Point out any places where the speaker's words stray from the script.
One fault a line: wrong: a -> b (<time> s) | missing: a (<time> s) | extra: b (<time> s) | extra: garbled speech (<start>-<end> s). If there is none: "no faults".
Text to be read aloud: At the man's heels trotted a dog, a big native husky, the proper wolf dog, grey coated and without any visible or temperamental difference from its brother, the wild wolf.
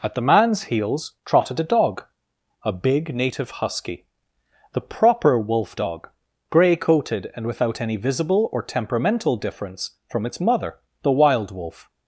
wrong: brother -> mother (10.4 s)